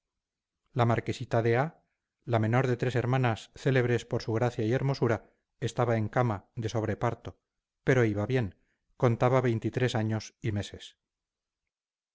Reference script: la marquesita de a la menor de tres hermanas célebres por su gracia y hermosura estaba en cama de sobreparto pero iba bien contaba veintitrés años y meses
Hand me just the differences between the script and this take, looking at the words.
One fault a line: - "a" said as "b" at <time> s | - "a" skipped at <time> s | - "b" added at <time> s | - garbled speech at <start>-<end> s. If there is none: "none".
none